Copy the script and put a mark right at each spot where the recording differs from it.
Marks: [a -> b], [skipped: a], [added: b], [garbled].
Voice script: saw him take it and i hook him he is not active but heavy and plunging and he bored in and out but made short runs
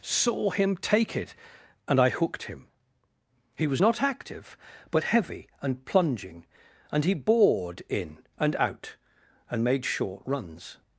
saw him take it and i [hook -> hooked] him he [is -> was] not active but heavy and plunging and he bored in and out [but -> and] made short runs